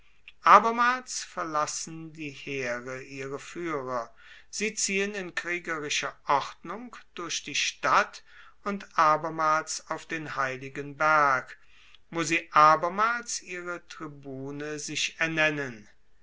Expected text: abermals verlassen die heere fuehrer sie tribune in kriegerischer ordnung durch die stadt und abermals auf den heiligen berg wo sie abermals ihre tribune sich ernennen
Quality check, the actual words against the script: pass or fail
fail